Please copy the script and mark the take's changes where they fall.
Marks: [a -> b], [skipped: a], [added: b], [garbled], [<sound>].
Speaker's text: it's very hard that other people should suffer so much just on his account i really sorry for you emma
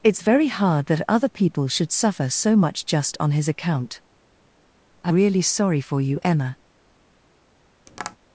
it's very hard that other people should suffer so much just on his account i really sorry for you emma [tap]